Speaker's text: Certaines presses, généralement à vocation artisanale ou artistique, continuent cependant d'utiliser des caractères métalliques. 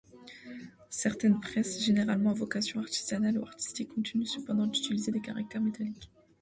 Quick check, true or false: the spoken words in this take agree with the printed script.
true